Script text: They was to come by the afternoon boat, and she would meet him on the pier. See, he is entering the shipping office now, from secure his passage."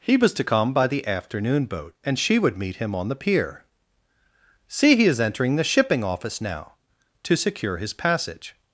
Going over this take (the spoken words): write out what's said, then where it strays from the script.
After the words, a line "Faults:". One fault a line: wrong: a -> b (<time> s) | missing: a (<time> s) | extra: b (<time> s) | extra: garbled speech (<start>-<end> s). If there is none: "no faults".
He was to come by the afternoon boat, and she would meet him on the pier. See, he is entering the shipping office now, to secure his passage."
Faults:
wrong: They -> He (0.0 s)
wrong: from -> to (7.2 s)